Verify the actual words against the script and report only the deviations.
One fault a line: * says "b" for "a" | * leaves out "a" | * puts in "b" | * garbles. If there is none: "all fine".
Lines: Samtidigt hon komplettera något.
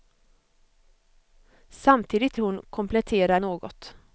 all fine